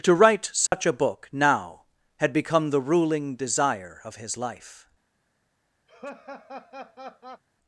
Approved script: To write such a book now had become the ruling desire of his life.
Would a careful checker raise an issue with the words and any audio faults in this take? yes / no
yes